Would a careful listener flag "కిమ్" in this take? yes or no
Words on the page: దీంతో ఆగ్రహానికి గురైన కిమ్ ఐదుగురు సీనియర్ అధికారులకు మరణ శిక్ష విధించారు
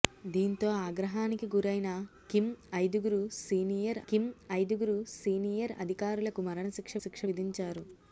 no